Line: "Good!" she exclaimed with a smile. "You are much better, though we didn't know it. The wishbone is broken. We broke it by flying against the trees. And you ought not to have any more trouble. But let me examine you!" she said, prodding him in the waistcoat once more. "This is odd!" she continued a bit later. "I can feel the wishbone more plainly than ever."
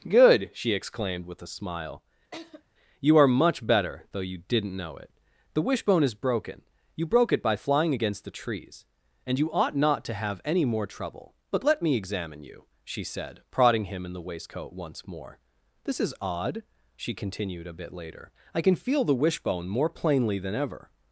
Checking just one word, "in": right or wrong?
right